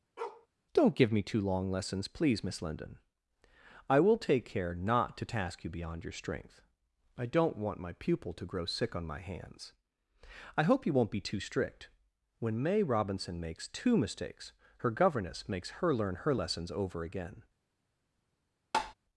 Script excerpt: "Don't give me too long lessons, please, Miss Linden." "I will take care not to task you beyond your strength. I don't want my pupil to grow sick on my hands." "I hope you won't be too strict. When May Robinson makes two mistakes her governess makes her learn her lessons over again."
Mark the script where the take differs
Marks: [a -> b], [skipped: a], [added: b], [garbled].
"Don't give me too long lessons, please, Miss Linden." "I will take care not to task you beyond your strength. I don't want my pupil to grow sick on my hands." "I hope you won't be too strict. When May Robinson makes two mistakes her governess makes her learn her lessons over again."